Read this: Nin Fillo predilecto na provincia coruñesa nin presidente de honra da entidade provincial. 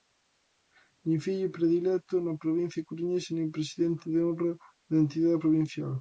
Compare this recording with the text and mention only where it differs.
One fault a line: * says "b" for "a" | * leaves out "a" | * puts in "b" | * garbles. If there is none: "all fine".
all fine